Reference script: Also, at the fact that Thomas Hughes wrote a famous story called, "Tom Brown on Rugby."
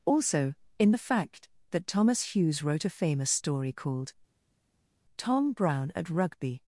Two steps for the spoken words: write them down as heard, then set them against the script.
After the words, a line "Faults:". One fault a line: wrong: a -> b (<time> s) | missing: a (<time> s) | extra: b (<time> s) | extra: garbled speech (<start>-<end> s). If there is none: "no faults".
Also, in the fact that Thomas Hughes wrote a famous story called, "Tom Brown at Rugby."
Faults:
wrong: at -> in (0.8 s)
wrong: on -> at (5.9 s)